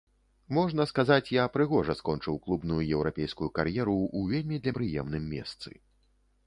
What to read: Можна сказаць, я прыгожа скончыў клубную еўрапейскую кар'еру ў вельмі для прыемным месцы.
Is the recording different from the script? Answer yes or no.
no